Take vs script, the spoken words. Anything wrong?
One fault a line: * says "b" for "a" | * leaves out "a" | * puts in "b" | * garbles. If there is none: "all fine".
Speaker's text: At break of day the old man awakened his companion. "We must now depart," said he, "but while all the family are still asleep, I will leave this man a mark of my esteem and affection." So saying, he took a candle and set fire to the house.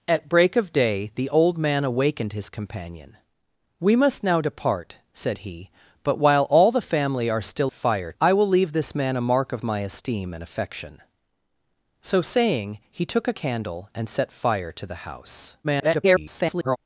* says "fire" for "asleep"
* garbles